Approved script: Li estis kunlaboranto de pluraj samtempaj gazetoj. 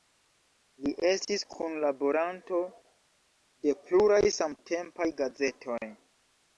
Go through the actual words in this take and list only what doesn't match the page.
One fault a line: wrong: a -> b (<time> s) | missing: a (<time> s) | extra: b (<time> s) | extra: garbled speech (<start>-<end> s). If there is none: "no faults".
no faults